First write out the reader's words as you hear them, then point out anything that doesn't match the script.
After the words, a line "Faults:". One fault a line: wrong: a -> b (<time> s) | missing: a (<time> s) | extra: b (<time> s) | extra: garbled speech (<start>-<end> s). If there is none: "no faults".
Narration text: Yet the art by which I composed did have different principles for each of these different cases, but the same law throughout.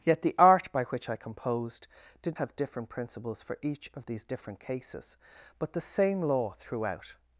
Yet the art by which I composed did have different principles for each of these different cases, but the same law throughout.
Faults:
no faults